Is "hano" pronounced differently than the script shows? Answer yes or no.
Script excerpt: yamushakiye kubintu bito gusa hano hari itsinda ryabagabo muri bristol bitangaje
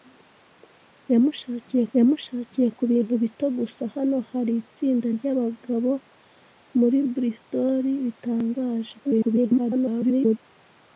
no